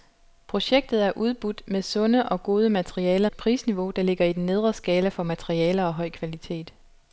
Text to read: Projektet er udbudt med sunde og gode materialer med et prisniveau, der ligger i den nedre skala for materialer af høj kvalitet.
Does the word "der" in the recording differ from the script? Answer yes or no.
no